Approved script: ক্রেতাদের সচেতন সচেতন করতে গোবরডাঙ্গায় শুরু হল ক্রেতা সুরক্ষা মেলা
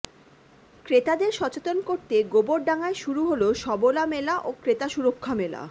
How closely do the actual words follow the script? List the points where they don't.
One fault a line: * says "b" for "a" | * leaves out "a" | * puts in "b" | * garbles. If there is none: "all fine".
* leaves out "সচেতন"
* puts in "সবলা মেলা ও"